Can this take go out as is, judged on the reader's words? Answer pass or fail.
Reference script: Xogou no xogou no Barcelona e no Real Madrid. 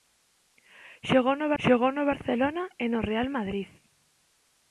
pass